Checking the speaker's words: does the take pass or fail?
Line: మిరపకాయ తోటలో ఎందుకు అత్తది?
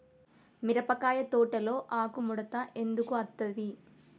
fail